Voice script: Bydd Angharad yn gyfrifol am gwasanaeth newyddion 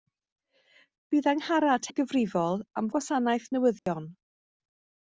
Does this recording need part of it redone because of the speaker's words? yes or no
no